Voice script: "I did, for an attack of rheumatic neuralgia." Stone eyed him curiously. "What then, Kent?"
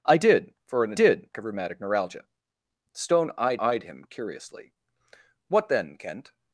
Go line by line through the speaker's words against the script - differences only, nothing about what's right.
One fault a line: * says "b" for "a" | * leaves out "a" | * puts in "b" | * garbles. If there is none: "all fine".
* says "did" for "attack"
* puts in "eyed"